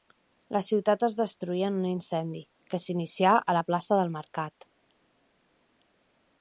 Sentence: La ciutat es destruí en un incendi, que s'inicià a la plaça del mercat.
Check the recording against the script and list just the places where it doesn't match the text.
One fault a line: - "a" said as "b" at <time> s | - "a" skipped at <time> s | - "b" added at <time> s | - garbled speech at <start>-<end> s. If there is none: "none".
none